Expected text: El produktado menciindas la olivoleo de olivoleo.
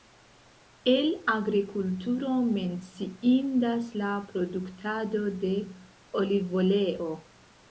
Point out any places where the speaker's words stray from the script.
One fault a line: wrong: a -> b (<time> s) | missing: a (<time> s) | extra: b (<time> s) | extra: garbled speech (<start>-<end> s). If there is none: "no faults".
wrong: produktado -> agrikulturo (1.3 s)
wrong: olivoleo -> produktado (4.3 s)